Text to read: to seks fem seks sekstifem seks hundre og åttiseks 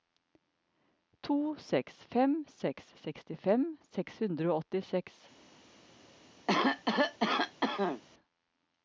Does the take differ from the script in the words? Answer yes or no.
no